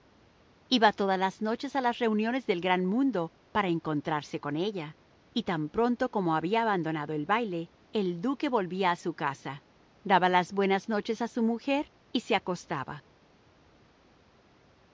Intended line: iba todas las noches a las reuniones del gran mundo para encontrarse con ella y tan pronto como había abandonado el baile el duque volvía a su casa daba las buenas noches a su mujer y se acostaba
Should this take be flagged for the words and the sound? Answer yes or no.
no